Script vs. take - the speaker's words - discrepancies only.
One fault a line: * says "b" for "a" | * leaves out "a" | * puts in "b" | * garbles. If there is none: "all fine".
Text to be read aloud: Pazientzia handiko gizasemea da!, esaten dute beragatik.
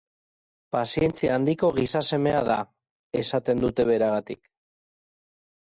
all fine